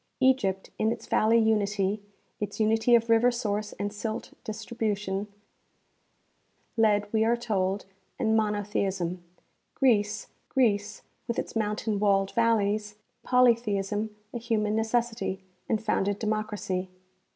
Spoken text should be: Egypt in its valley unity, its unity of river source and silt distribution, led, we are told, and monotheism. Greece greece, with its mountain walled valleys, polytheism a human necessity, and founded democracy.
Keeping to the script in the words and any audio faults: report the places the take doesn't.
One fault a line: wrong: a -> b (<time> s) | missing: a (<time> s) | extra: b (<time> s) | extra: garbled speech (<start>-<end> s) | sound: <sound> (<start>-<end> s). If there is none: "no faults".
no faults